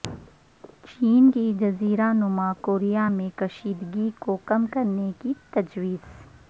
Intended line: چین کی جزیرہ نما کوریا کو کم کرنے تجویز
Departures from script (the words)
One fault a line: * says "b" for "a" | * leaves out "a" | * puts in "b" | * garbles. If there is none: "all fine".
* puts in "میں کشیدگی"
* puts in "کی"